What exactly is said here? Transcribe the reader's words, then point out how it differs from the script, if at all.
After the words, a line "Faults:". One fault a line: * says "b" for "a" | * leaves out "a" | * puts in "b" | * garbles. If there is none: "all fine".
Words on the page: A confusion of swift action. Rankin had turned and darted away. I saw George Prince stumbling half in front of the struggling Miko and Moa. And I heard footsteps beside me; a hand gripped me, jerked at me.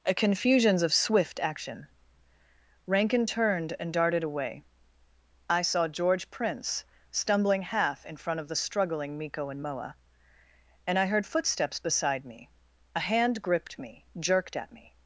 A confusions of swift action. Rankin turned and darted away. I saw George Prince stumbling half in front of the struggling Miko and Moa. And I heard footsteps beside me; a hand gripped me, jerked at me.
Faults:
* says "confusions" for "confusion"
* leaves out "had"